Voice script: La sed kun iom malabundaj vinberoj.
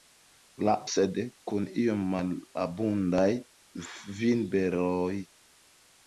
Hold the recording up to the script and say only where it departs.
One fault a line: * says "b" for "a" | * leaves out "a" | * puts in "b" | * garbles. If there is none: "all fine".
all fine